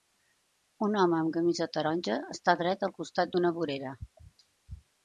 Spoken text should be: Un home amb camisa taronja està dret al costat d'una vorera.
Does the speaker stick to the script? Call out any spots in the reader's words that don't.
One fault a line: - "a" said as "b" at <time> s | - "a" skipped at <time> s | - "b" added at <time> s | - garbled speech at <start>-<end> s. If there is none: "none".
none